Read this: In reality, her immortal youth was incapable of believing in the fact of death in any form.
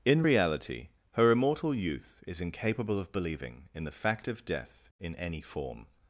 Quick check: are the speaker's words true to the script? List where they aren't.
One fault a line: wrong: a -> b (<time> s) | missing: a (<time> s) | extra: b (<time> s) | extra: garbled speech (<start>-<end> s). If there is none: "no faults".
wrong: was -> is (2.3 s)